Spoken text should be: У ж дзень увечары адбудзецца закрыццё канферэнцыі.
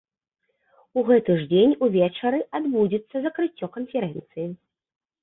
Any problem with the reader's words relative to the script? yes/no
yes